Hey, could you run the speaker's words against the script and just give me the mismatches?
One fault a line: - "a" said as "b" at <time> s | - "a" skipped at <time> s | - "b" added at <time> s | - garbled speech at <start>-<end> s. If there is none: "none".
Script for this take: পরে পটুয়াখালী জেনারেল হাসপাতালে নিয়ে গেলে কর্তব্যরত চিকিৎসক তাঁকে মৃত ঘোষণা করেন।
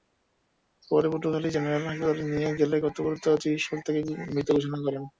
none